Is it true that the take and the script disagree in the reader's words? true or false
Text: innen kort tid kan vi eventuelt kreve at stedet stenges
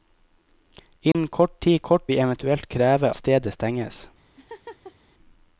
true